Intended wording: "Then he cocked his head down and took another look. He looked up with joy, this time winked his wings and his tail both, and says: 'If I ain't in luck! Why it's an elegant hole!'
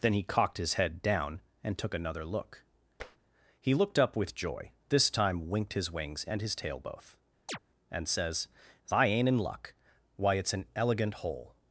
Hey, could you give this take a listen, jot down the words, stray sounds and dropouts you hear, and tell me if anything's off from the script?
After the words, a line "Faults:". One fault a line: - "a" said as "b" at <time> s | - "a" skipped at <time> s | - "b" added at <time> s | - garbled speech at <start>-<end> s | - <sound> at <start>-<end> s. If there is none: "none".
"Then he cocked his head down and took another look. He looked up with joy, this time winked his wings and his tail both, and says: I ain't in luck! Why it's an elegant hole!'
Faults:
- tap at 3.0-3.2 s
- chirp at 7.5-7.6 s
- "If" skipped at 8.5 s